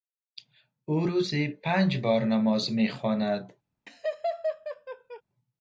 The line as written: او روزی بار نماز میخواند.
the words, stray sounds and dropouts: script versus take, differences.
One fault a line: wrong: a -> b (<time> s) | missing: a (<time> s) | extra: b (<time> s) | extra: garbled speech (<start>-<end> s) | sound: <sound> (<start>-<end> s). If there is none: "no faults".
extra: پنج (1.5 s)
sound: laugh (3.9-5.2 s)